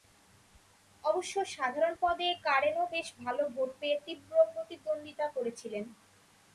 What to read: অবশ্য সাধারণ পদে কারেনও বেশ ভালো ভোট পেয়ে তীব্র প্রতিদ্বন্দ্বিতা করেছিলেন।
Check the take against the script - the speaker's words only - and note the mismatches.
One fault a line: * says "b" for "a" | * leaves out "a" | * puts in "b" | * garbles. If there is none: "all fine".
all fine